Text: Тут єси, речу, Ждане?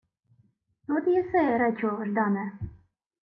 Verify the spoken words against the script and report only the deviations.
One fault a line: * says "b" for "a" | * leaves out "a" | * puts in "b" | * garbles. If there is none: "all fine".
all fine